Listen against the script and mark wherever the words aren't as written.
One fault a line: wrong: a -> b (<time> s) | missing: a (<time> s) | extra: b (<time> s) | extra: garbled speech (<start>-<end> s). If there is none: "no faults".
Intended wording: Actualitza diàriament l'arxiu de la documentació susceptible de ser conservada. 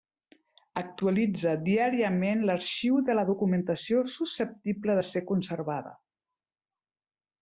no faults